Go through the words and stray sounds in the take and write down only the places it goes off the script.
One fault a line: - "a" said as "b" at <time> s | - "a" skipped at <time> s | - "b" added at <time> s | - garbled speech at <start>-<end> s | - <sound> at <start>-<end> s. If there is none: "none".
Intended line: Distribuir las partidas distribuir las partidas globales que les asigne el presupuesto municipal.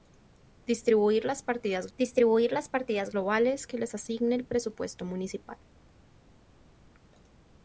none